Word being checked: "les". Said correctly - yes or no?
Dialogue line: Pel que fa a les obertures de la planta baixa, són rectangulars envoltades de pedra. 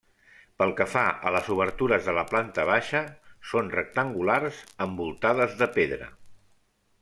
yes